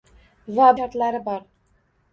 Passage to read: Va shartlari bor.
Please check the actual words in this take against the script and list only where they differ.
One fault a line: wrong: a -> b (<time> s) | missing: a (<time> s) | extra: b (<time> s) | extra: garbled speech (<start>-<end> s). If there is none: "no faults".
no faults